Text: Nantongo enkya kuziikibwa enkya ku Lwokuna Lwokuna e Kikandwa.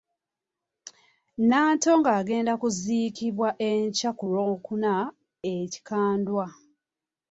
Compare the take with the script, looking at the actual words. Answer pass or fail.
fail